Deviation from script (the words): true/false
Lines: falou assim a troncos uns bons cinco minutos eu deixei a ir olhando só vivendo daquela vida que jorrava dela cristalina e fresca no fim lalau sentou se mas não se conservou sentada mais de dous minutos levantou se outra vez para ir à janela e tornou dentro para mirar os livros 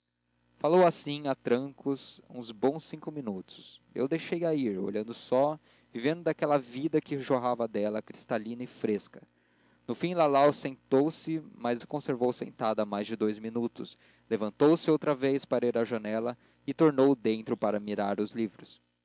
true